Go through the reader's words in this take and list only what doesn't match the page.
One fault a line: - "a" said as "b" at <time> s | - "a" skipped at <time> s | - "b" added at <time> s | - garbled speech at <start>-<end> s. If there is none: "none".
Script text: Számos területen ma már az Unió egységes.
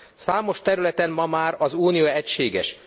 none